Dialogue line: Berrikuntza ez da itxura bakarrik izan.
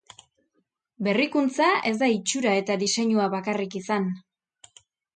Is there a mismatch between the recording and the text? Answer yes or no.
yes